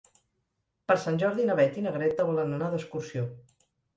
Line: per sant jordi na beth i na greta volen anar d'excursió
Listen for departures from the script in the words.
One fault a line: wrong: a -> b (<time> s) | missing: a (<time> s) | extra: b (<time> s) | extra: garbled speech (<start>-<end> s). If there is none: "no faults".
no faults